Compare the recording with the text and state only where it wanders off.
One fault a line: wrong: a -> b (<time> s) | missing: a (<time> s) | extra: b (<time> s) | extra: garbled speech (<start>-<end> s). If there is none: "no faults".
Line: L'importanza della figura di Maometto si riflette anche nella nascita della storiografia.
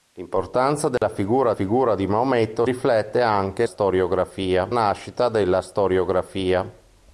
extra: figura (1.5 s)
missing: si (2.7 s)
wrong: nella -> storiografia (3.6 s)